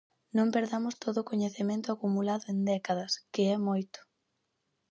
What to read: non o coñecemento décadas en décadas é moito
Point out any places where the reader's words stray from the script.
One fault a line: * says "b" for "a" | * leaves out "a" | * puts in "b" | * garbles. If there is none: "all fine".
* puts in "perdamos todo"
* says "acumulado" for "décadas"
* puts in "que"